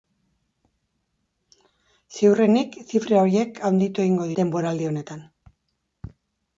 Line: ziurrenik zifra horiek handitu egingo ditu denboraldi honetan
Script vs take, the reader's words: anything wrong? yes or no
yes